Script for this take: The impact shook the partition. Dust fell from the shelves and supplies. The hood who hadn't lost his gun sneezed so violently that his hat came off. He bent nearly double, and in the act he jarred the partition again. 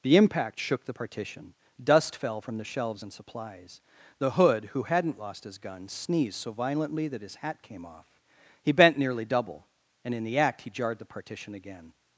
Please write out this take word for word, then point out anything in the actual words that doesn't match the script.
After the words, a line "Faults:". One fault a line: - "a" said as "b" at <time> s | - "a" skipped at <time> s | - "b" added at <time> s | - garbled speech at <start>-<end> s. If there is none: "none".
The impact shook the partition. Dust fell from the shelves and supplies. The hood who hadn't lost his gun sneezed so violently that his hat came off. He bent nearly double, and in the act he jarred the partition again.
Faults:
none